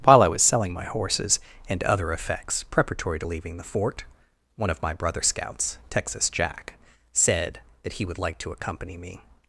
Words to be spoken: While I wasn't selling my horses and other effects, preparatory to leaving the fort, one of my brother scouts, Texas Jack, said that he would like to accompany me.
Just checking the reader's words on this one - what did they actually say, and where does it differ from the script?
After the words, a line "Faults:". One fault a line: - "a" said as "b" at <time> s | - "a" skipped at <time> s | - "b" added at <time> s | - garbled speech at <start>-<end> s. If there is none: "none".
While I was selling my horses and other effects, preparatory to leaving the fort, one of my brother scouts, Texas Jack, said that he would like to accompany me.
Faults:
- "wasn't" said as "was" at 0.3 s